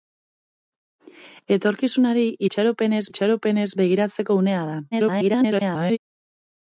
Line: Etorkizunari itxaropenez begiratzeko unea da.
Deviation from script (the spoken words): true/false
true